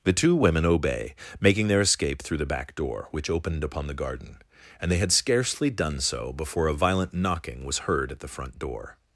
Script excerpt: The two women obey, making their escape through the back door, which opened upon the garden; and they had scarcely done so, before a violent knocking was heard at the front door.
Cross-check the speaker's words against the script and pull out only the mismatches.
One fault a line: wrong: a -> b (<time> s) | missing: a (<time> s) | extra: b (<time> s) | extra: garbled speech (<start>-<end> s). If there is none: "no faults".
no faults